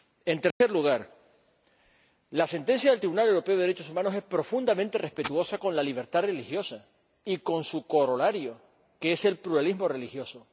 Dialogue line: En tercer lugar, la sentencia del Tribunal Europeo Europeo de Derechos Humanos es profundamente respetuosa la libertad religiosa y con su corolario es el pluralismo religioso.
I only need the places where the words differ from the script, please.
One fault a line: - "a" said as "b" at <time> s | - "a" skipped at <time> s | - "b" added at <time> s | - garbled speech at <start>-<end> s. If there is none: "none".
- "Europeo" skipped at 3.6 s
- "con" added at 5.6 s
- "que" added at 9.0 s